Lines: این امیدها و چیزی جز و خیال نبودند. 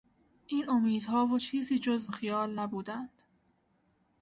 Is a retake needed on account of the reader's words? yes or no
no